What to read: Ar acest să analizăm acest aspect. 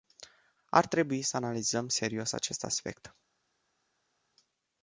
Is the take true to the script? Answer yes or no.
no